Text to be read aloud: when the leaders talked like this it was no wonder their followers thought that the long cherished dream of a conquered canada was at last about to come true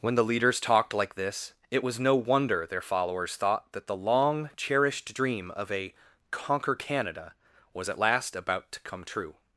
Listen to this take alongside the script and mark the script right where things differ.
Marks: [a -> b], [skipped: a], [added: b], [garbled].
when the leaders talked like this it was no wonder their followers thought that the long cherished dream of a [conquered -> conquer] canada was at last about to come true